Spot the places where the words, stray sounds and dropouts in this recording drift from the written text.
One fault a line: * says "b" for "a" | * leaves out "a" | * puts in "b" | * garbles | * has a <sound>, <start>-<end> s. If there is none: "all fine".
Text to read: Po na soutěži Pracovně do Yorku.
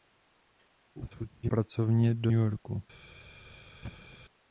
* has a thud, 3.8-4.2 s